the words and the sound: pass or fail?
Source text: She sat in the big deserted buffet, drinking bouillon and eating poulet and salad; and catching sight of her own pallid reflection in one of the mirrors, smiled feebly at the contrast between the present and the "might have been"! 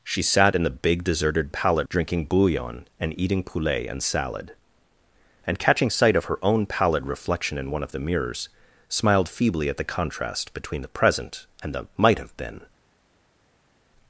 fail